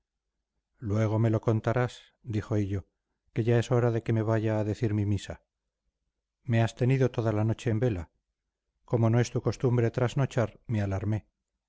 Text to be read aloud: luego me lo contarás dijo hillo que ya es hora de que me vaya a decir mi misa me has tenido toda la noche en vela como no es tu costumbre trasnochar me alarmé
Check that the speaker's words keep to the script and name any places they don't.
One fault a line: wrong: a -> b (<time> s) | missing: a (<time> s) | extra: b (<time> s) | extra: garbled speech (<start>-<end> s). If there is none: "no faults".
no faults